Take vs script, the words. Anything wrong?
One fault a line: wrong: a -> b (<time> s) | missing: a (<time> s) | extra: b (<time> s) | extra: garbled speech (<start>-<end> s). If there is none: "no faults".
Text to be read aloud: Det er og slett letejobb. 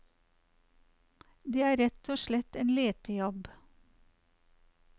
extra: rett (1.8 s)
extra: en (2.6 s)